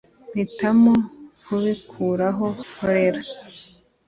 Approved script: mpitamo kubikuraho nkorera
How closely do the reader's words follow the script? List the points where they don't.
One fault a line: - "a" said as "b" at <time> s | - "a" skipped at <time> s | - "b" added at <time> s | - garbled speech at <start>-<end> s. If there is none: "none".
none